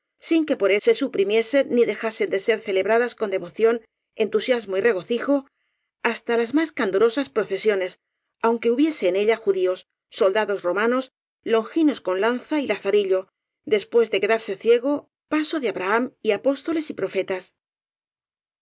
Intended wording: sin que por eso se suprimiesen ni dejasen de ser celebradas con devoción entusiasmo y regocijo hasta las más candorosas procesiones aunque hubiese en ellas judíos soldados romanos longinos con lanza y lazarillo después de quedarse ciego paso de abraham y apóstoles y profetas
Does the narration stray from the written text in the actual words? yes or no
yes